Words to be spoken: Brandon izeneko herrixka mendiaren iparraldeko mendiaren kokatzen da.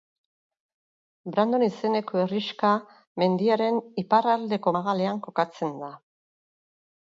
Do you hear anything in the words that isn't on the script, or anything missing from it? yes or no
yes